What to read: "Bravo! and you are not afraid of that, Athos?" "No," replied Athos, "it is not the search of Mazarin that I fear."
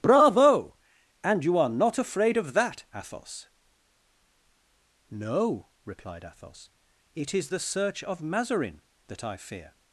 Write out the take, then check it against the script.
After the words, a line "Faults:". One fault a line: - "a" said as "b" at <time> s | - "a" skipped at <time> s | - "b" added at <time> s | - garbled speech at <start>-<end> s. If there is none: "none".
"Bravo! and you are not afraid of that, Athos?" "No," replied Athos, "it is the search of Mazarin that I fear."
Faults:
- "not" skipped at 7.5 s